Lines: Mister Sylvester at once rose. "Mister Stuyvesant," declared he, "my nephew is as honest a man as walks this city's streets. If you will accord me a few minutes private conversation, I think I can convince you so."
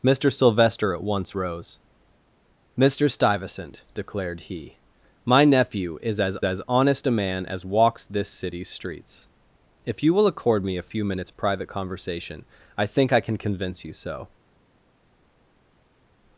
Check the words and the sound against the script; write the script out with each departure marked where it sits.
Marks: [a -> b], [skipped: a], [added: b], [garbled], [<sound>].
Mister Sylvester at once rose. "Mister Stuyvesant," declared he, "my nephew is as [added: as] honest a man as walks this city's streets. If you will accord me a few minutes private conversation, I think I can convince you so."